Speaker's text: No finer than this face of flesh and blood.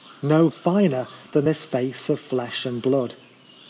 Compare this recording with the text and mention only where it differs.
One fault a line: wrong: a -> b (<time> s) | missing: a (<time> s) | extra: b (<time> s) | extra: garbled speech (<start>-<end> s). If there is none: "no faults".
no faults